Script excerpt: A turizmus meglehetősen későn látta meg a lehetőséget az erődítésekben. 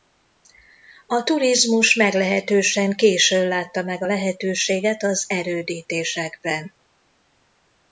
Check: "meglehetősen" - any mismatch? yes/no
no